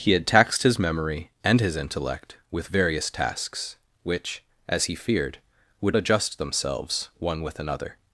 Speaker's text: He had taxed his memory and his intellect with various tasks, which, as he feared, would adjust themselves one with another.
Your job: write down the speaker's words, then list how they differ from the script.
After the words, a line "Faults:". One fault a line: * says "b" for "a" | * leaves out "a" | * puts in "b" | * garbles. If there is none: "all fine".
He had taxed his memory and his intellect with various tasks, which, as he feared, would adjust themselves one with another.
Faults:
all fine